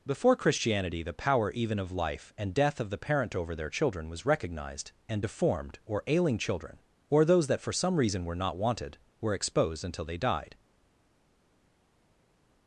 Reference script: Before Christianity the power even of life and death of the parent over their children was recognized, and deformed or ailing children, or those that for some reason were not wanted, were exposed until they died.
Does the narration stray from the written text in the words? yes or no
no